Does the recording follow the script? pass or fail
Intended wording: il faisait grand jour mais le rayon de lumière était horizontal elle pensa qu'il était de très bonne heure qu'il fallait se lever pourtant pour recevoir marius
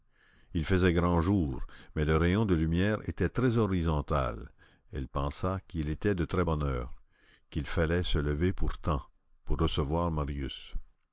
fail